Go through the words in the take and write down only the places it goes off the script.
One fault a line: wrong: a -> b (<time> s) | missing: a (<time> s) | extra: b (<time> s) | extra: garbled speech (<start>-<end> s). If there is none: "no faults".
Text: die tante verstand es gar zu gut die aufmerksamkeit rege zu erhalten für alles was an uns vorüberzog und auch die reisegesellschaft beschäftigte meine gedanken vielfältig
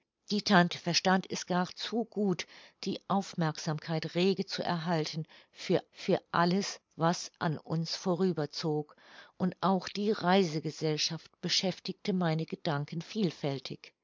extra: für (5.9 s)